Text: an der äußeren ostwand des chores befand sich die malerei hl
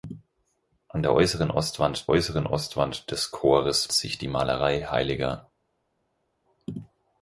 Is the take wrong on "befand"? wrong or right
wrong